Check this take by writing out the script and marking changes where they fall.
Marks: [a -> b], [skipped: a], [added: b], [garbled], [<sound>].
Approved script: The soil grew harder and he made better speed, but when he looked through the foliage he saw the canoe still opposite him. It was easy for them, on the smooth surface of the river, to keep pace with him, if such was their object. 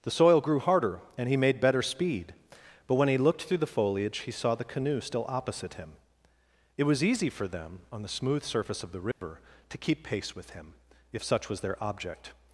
The soil grew harder and he made better speed, but when he looked through the foliage he saw the canoe still opposite him. It was easy for them, on the smooth surface of the river, [dropout] to keep pace with him, if such was their object.